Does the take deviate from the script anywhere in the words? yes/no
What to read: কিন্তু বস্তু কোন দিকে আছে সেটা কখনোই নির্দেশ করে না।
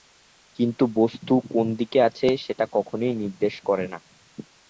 no